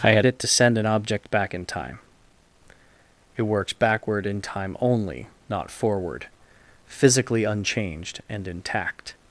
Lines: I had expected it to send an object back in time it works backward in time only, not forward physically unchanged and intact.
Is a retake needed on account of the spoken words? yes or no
yes